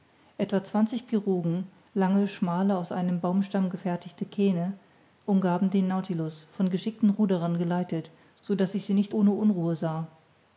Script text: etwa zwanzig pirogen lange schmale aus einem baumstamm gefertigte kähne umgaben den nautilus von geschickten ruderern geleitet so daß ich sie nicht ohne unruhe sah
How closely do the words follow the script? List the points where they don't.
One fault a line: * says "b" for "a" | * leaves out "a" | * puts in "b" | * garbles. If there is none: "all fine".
all fine